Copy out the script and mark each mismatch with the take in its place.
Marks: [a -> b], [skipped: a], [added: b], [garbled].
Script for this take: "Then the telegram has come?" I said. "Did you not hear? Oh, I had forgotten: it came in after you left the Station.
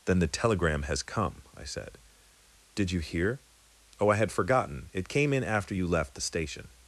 "Then the telegram has come?" I said. "Did you [skipped: not] hear? Oh, I had forgotten: it came in after you left the Station.